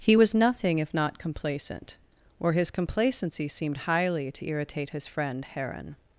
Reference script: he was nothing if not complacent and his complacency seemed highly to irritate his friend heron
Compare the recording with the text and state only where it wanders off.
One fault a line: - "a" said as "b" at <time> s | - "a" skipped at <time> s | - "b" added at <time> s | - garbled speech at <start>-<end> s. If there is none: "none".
- "and" said as "or" at 2.4 s